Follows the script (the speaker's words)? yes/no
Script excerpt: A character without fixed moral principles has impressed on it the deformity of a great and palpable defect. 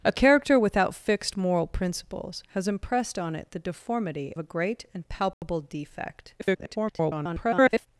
no